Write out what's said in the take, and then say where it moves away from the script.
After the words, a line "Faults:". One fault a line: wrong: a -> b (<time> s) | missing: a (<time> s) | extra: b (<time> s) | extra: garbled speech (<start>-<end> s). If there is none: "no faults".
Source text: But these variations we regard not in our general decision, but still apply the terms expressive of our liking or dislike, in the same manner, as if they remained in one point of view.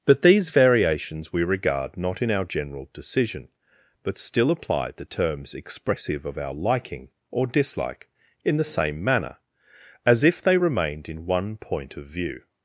But these variations we regard not in our general decision, but still apply the terms expressive of our liking or dislike, in the same manner, as if they remained in one point of view.
Faults:
no faults